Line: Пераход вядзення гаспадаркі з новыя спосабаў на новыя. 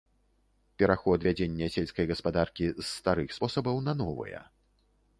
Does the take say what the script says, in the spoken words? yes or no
no